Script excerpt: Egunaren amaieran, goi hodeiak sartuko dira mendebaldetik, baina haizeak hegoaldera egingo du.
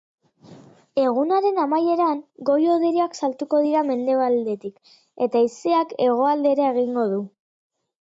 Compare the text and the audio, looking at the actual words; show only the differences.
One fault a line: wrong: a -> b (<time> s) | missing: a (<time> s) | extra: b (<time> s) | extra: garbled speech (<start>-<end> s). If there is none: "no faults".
wrong: baina -> eta (5.3 s)